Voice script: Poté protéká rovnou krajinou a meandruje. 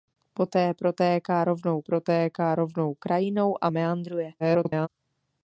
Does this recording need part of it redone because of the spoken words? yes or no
yes